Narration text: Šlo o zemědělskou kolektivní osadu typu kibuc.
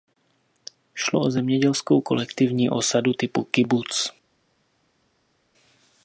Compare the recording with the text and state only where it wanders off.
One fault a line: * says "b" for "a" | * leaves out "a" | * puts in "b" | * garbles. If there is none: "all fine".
all fine